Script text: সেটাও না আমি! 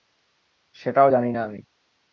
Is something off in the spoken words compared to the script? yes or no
yes